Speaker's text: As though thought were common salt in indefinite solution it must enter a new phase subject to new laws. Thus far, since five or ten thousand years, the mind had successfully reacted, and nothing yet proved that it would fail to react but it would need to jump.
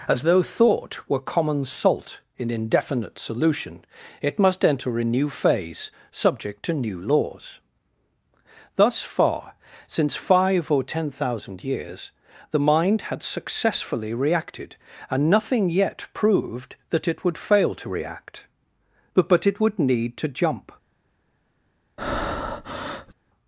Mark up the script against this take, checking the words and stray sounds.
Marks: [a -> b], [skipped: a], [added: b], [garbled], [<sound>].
As though thought were common salt in indefinite solution it must enter a new phase subject to new laws. Thus far, since five or ten thousand years, the mind had successfully reacted, and nothing yet proved that it would fail to react but [added: but] it would need to jump. [breath]